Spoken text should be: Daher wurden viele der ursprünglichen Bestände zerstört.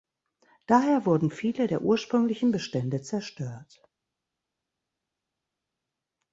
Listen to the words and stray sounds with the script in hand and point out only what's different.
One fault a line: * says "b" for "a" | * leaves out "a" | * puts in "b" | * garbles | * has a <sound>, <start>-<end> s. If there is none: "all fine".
all fine